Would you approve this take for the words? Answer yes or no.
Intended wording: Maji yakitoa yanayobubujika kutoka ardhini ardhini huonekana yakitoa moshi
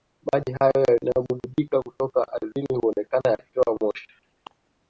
no